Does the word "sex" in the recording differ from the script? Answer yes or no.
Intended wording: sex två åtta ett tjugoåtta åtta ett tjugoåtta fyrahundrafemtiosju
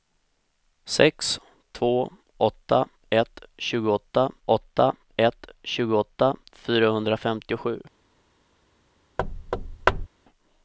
no